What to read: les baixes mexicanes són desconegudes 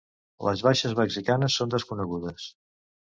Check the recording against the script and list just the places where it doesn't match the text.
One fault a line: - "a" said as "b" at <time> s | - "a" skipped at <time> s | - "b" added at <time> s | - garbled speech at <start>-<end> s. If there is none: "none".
none